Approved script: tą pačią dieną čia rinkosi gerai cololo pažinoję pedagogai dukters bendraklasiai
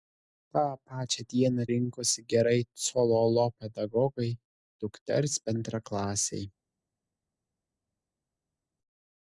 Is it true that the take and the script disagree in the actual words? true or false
true